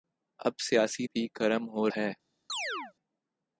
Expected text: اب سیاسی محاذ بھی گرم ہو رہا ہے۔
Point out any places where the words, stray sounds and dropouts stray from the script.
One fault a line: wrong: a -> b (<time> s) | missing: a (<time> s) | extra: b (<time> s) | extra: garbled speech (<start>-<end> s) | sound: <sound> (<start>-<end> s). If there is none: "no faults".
missing: محاذ (1.1 s)
missing: رہا (1.9 s)
sound: chirp (2.5-2.9 s)